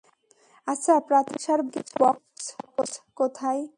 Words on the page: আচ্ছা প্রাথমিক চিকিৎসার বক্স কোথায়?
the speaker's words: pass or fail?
pass